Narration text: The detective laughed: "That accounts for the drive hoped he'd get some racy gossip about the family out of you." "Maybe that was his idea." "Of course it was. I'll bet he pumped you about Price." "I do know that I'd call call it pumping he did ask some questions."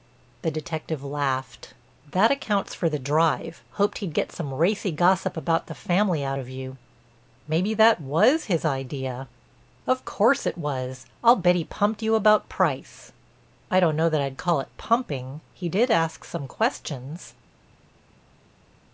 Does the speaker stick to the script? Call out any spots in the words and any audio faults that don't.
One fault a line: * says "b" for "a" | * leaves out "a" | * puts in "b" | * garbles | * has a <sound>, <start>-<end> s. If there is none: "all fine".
* says "don't" for "do"
* leaves out "call"